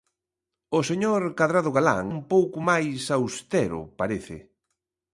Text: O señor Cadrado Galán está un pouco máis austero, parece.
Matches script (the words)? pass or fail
fail